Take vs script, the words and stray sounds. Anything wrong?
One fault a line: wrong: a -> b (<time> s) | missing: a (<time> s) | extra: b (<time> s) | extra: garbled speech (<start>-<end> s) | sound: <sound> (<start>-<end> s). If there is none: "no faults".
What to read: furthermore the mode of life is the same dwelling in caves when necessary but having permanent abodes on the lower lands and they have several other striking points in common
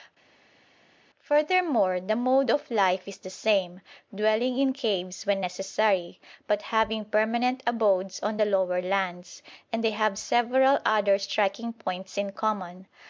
no faults